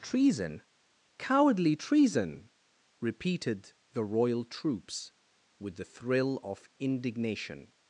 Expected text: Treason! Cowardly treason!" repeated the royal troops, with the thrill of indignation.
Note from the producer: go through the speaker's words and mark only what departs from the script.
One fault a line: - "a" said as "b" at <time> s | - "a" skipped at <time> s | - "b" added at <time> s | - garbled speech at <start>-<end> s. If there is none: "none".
none